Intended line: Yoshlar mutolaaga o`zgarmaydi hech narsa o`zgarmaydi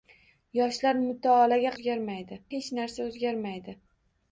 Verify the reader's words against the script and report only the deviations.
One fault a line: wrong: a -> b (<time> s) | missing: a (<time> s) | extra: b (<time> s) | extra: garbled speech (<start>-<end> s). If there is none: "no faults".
no faults